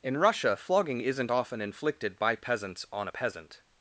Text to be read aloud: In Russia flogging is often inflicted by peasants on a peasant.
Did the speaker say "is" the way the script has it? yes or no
no